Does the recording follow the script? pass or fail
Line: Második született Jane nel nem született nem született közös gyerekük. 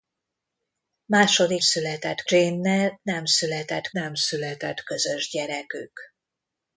pass